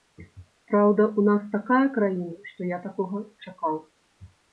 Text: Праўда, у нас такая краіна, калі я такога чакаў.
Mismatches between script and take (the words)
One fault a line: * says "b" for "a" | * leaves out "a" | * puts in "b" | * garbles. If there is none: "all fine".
* says "што" for "калі"